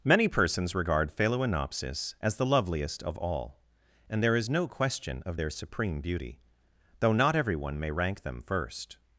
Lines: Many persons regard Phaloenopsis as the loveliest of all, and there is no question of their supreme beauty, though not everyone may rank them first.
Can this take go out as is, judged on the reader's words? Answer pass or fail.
pass